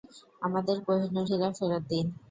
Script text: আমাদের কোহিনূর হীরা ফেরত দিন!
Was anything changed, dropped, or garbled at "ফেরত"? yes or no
no